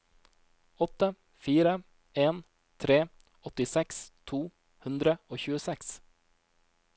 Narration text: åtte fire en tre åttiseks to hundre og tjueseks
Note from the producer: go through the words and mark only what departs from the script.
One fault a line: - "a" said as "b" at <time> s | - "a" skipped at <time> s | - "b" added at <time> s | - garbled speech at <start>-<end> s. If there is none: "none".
none